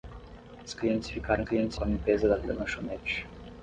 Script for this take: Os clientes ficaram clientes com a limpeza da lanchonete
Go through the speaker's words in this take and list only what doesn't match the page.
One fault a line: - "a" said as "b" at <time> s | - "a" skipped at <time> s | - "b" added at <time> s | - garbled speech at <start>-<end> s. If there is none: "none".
none